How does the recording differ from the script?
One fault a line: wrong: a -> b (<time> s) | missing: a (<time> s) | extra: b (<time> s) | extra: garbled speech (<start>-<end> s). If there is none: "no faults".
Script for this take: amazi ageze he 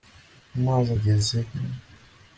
no faults